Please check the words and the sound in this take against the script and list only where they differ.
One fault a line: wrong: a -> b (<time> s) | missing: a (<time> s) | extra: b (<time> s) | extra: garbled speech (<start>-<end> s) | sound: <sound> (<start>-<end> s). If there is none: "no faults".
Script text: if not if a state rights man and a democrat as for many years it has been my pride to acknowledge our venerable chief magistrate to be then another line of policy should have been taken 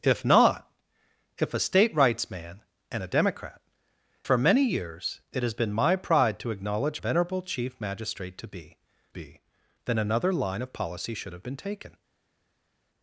missing: as (3.6 s)
missing: our (7.0 s)
extra: be (9.1 s)